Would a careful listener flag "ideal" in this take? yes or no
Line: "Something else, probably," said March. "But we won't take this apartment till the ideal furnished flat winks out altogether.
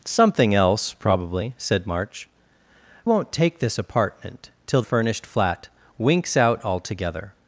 yes